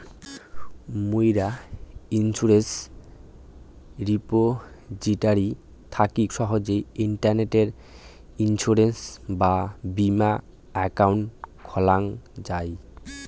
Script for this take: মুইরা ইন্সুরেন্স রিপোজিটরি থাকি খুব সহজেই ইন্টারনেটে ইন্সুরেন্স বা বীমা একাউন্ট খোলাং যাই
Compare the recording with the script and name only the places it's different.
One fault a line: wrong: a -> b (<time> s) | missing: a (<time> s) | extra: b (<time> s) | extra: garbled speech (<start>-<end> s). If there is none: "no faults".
missing: খুব (6.2 s)